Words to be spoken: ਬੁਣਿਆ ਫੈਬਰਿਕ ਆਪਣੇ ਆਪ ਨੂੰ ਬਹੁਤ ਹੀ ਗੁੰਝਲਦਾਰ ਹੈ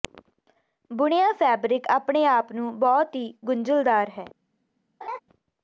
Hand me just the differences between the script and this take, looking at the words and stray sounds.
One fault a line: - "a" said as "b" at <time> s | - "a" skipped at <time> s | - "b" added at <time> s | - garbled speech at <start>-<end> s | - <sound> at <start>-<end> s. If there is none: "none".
- laugh at 5.0-5.2 s